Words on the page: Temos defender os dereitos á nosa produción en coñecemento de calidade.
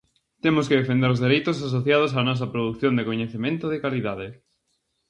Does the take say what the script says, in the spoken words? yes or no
no